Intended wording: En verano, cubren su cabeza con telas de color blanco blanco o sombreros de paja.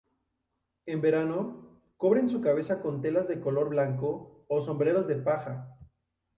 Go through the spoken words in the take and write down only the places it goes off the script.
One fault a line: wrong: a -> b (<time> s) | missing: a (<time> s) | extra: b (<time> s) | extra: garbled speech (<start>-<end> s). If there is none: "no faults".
missing: blanco (4.4 s)